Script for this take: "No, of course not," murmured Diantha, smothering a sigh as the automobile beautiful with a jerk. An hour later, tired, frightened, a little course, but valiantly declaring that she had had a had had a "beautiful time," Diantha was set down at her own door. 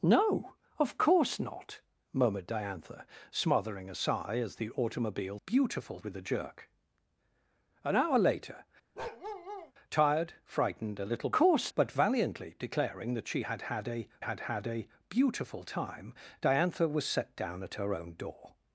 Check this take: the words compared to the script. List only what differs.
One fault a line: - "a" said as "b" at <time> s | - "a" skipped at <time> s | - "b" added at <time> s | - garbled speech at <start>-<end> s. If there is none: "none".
none